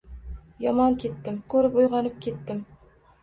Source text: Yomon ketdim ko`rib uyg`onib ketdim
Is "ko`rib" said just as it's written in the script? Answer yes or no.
yes